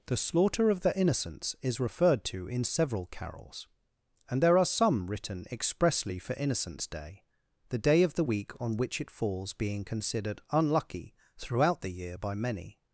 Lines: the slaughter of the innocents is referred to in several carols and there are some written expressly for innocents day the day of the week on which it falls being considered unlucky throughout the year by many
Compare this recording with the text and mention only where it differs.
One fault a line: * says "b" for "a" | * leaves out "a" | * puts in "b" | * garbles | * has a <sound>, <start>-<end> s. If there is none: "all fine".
all fine